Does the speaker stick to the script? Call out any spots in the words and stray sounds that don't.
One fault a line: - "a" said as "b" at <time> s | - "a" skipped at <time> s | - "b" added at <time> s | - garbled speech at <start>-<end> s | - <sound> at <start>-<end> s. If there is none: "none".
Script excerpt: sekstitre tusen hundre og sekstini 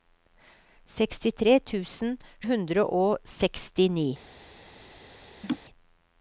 - laugh at 5.4-5.6 s